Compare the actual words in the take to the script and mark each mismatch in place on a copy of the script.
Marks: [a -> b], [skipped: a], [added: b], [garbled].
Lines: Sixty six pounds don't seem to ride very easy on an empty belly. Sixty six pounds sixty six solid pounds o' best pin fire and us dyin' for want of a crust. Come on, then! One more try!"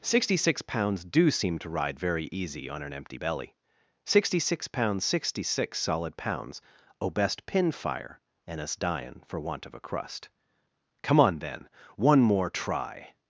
Sixty six pounds [don't -> do] seem to ride very easy on an empty belly. Sixty six pounds sixty six solid pounds o' best pin fire and us dyin' for want of a crust. Come on, then! One more try!"